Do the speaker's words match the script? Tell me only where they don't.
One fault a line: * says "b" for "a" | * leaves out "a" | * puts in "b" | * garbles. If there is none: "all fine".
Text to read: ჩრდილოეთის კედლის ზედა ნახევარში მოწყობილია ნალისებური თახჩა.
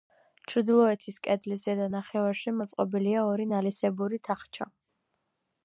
* puts in "ორი"